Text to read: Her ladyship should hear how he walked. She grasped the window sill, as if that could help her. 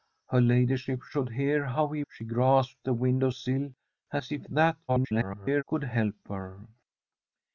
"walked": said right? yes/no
no